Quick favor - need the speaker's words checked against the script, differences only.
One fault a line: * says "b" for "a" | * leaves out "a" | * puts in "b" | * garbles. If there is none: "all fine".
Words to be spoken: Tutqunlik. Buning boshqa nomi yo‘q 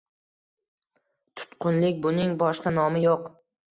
all fine